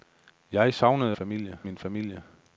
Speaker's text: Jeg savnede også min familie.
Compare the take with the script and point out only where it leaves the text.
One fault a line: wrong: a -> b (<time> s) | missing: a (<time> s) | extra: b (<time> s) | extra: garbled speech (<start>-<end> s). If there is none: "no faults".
wrong: også -> familie (1.1 s)